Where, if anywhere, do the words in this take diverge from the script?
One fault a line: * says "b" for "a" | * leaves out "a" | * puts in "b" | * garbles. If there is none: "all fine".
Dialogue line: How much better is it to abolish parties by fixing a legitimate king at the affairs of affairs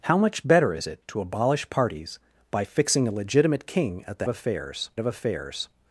all fine